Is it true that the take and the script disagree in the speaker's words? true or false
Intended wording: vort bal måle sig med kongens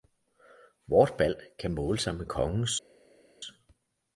true